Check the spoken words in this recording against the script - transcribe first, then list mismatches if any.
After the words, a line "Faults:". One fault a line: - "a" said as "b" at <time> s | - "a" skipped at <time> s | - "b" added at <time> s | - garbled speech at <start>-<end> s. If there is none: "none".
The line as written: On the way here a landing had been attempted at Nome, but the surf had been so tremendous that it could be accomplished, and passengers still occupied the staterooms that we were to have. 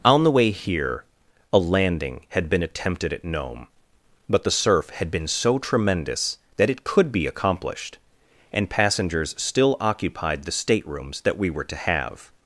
On the way here a landing had been attempted at Nome, but the surf had been so tremendous that it could be accomplished, and passengers still occupied the staterooms that we were to have.
Faults:
none